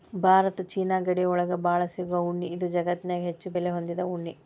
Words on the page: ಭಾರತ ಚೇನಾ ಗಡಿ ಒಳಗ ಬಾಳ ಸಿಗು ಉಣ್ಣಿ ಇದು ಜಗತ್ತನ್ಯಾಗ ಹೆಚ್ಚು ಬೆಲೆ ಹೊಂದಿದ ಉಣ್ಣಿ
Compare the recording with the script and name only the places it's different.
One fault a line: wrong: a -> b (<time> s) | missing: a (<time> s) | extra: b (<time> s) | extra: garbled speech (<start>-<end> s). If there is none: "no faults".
no faults